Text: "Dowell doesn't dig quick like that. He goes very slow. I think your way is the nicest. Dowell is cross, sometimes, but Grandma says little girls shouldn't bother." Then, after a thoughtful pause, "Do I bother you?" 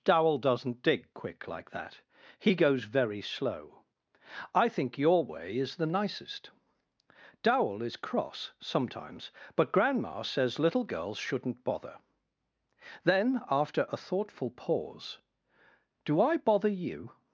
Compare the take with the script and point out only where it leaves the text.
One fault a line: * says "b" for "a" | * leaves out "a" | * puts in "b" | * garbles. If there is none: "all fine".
all fine